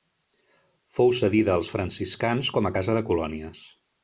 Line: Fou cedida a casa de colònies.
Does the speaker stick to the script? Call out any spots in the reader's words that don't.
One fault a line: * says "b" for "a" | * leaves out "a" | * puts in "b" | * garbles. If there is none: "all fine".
* puts in "als franciscans com"